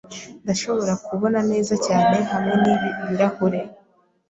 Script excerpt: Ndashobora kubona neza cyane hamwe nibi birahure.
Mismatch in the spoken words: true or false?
false